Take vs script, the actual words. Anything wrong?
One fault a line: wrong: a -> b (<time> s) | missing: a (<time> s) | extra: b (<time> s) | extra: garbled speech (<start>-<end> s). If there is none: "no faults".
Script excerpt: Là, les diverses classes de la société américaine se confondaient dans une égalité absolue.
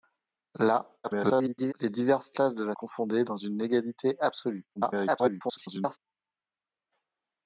extra: garbled speech (1.0-1.7 s)
missing: société américaine se (2.7 s)
extra: garbled speech (4.8-6.0 s)